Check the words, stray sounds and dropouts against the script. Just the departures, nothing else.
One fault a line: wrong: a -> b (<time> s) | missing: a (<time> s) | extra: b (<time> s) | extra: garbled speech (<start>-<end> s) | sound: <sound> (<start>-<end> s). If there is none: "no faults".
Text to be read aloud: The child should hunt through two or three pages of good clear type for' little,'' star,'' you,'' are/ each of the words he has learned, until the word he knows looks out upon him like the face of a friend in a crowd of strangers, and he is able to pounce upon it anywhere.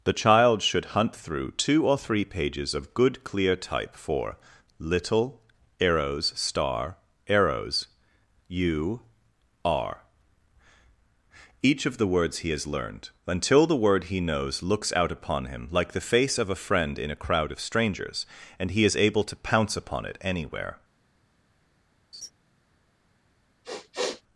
extra: arrows (5.8 s)
extra: arrows (7.3 s)
sound: laugh (22.1-22.3 s)
sound: sniff (23.6-24.2 s)